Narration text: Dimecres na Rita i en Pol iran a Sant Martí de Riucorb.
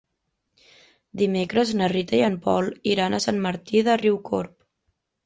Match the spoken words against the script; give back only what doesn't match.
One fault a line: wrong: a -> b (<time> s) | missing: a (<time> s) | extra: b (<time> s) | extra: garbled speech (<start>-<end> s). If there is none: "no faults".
no faults